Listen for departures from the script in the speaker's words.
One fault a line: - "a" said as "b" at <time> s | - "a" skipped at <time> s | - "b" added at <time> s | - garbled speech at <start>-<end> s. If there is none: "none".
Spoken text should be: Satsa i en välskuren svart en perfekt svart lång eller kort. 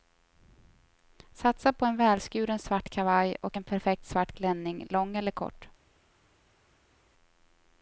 - "i" said as "på" at 1.7 s
- "kavaj och" added at 2.9 s
- "klänning" added at 4.3 s